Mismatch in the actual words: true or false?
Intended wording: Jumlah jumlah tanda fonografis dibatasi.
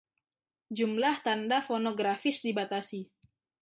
true